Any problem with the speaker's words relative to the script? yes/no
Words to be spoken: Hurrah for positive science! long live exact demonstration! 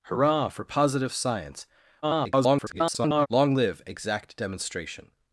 yes